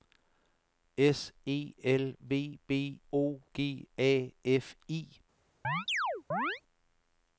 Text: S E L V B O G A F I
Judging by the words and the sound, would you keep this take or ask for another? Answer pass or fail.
fail